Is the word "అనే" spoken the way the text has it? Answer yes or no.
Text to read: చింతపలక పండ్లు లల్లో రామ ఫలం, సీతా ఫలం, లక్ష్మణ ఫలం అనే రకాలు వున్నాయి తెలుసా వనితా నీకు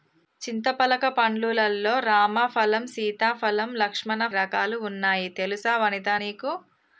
no